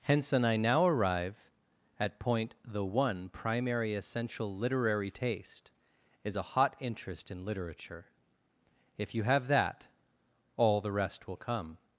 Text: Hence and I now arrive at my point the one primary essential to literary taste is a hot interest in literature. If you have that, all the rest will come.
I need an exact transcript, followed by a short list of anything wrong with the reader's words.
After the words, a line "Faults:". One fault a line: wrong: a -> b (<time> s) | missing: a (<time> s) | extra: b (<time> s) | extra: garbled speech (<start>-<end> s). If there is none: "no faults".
Hence and I now arrive at point the one primary essential literary taste is a hot interest in literature. If you have that, all the rest will come.
Faults:
missing: my (2.2 s)
missing: to (4.5 s)